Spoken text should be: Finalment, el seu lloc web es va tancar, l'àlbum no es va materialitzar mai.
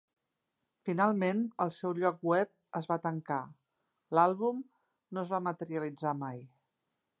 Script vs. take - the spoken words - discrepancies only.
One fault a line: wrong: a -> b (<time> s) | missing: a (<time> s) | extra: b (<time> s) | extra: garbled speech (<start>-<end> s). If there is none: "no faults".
no faults